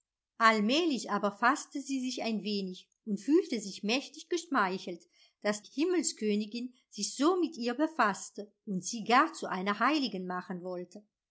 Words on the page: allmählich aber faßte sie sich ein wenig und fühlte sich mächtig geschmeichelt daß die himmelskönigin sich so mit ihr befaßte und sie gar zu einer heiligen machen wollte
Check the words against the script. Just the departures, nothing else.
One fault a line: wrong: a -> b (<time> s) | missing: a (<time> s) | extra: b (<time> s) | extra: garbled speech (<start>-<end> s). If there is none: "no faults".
missing: die (5.6 s)